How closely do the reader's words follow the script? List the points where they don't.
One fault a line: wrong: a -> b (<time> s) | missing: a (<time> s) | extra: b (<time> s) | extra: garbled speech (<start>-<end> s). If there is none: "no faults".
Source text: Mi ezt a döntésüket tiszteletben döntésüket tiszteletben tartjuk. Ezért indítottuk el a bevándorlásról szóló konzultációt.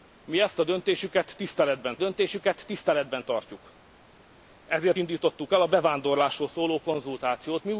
no faults